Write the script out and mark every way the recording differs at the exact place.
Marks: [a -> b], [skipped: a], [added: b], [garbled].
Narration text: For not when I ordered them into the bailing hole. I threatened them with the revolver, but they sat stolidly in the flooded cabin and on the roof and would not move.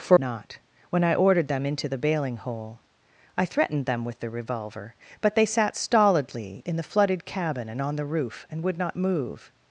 For not when I ordered them into the bailing hole. I threatened them with the revolver, but they sat stolidly in the flooded cabin and on the roof and would not move.